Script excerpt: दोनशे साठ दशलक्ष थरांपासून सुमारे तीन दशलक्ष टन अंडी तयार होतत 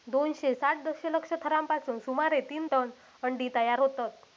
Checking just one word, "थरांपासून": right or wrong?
right